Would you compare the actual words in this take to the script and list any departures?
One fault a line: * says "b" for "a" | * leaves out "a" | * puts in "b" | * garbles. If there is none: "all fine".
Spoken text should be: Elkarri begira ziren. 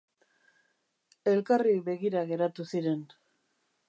* puts in "geratu"